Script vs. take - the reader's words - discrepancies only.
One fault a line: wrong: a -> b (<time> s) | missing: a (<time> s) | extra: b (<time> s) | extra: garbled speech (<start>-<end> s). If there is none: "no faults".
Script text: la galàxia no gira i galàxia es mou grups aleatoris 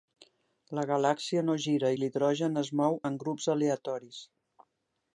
wrong: galàxia -> l'hidrogen (2.0 s)
extra: en (3.1 s)